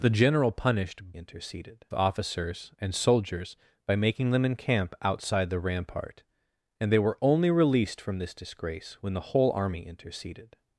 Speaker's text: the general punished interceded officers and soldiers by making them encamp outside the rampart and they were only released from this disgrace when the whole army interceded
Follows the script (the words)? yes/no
yes